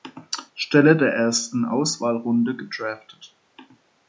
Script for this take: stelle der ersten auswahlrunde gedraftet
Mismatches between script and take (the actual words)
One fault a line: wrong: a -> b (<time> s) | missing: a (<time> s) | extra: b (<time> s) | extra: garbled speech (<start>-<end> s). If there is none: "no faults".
no faults